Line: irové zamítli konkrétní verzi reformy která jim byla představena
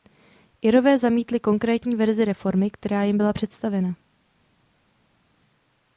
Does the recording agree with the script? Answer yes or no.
yes